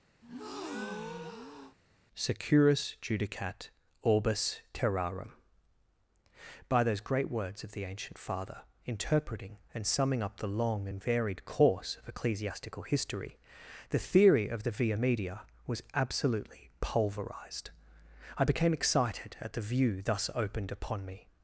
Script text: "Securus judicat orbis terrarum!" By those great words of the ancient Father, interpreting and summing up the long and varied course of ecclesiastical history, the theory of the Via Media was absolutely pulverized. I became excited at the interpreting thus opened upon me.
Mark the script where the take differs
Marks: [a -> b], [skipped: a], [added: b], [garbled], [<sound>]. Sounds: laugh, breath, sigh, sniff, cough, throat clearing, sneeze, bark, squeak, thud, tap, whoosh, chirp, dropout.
[breath] "Securus judicat orbis terrarum!" By those great words of the ancient Father, interpreting and summing up the long and varied course of ecclesiastical history, the theory of the Via Media was absolutely pulverized. I became excited at the [interpreting -> view] thus opened upon me.